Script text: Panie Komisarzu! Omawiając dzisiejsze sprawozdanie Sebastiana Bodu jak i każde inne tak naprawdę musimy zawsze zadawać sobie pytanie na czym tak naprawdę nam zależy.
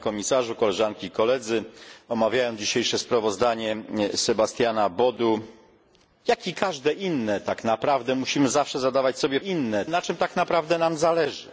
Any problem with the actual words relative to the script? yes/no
yes